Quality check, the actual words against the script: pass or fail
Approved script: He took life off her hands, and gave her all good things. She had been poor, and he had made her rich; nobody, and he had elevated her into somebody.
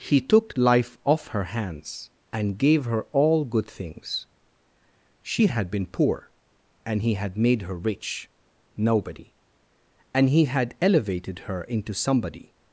pass